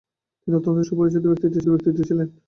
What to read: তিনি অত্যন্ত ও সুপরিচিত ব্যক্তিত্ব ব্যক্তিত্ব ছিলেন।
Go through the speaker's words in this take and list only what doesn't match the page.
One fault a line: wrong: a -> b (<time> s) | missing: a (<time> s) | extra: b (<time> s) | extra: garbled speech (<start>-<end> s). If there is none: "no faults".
no faults